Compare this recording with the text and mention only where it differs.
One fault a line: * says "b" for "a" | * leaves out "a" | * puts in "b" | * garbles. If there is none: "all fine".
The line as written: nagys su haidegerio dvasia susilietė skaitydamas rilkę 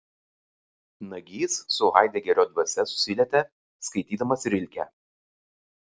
all fine